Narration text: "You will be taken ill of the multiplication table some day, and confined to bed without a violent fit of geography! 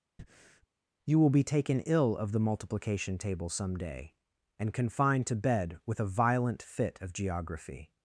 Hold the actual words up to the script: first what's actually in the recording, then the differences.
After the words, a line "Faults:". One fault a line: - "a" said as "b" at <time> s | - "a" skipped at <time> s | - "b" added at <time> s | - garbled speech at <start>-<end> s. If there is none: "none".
"You will be taken ill of the multiplication table some day, and confined to bed with a violent fit of geography!
Faults:
- "without" said as "with" at 5.9 s